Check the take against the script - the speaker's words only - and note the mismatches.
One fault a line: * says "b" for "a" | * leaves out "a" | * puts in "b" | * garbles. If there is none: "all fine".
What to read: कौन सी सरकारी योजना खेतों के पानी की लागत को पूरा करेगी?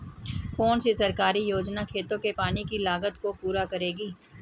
all fine